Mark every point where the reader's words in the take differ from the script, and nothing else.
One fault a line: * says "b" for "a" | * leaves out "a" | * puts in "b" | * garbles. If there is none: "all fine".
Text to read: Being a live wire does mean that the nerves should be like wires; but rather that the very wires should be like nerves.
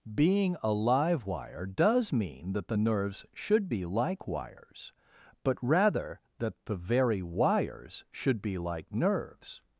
all fine